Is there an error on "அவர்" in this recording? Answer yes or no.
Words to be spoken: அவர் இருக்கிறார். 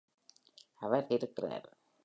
no